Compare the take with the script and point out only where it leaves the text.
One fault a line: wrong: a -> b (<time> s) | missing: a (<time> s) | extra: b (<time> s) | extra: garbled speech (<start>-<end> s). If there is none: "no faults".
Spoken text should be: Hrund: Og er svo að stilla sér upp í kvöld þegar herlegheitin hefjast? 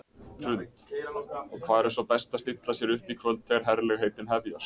extra: hvar (1.7 s)
extra: best (2.1 s)